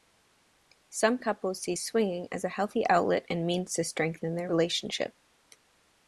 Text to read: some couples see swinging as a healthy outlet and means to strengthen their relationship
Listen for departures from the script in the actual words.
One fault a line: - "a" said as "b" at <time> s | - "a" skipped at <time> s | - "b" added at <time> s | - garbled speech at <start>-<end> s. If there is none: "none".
none